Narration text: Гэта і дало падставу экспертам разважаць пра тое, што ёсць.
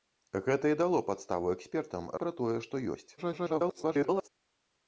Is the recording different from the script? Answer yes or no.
yes